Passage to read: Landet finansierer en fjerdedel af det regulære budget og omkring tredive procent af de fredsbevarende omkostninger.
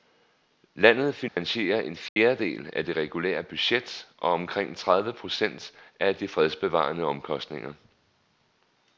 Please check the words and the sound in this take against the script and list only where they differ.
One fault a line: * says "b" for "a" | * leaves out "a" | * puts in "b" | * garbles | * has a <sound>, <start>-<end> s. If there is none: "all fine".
* has a dropout, 1.3-1.4 s
* has a dropout, 2.1-2.2 s